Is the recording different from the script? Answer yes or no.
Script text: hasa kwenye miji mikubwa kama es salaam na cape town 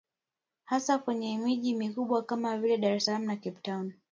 yes